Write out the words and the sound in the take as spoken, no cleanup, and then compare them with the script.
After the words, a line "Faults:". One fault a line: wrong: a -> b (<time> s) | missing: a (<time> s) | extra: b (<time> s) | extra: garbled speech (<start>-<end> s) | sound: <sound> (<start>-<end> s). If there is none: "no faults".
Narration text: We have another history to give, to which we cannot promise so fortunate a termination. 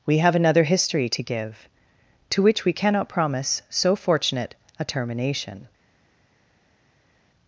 We have another history to give, to which we cannot promise so fortunate a termination.
Faults:
no faults